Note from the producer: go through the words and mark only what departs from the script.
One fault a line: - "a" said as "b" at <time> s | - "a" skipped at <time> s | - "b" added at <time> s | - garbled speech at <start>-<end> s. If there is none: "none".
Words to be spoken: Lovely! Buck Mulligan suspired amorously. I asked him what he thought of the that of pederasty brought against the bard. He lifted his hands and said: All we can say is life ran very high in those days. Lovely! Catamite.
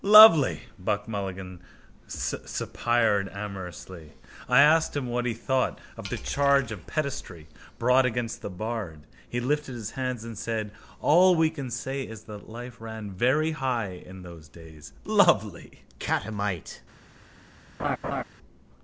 - "that" said as "charge" at 6.2 s
- "that" added at 12.2 s